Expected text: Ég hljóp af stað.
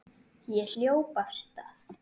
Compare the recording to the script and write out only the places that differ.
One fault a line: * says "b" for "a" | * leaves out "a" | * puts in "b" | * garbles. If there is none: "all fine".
all fine